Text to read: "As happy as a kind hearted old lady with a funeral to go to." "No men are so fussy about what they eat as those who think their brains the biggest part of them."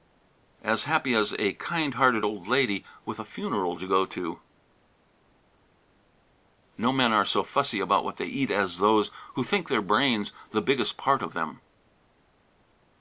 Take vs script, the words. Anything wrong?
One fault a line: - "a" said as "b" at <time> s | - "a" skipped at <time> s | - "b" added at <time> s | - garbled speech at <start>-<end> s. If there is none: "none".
none